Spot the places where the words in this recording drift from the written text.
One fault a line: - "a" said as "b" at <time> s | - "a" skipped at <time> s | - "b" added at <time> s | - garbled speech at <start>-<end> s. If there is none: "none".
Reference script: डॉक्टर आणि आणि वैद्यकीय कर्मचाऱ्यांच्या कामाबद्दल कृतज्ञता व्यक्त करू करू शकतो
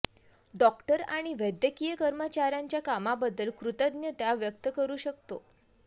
- "आणि" skipped at 1.3 s
- "करू" skipped at 5.0 s